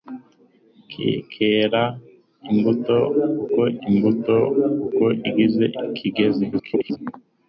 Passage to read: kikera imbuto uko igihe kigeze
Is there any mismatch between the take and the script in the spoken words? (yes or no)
yes